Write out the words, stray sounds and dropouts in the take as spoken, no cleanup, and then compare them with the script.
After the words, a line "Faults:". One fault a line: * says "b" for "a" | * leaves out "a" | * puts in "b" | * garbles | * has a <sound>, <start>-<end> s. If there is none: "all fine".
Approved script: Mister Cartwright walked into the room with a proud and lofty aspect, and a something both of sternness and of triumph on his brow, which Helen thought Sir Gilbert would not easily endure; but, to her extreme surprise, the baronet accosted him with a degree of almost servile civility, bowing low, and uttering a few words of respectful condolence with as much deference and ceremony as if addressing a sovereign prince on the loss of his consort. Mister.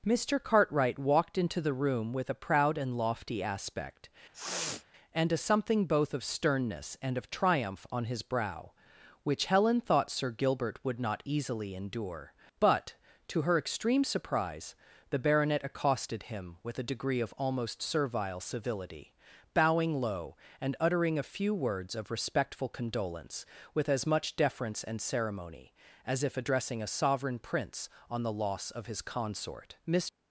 Mister Cartwright walked into the room with a proud and lofty aspect, and a something both of sternness and of triumph on his brow, which Helen thought Sir Gilbert would not easily endure; but, to her extreme surprise, the baronet accosted him with a degree of almost servile civility, bowing low, and uttering a few words of respectful condolence with as much deference and ceremony as if addressing a sovereign prince on the loss of his consort. Mister.
Faults:
* has a sniff, 4.3-4.8 s